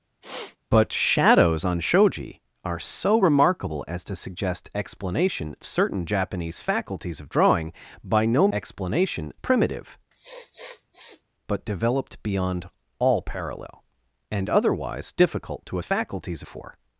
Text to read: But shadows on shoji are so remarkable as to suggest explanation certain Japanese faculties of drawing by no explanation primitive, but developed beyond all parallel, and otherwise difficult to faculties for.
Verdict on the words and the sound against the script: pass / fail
fail